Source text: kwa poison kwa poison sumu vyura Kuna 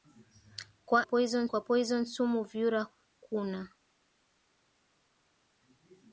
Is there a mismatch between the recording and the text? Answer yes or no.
no